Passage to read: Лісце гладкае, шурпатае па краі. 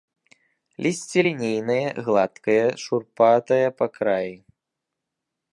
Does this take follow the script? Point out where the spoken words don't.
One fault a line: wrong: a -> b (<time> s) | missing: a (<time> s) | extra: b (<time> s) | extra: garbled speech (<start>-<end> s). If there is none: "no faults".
extra: лінейнае (1.2 s)